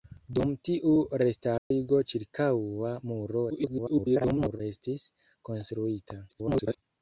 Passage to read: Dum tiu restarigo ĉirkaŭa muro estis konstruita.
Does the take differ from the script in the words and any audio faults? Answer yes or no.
yes